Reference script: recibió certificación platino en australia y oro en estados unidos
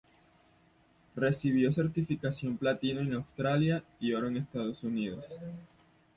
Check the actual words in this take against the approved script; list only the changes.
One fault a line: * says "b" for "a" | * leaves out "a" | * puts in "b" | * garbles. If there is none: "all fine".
all fine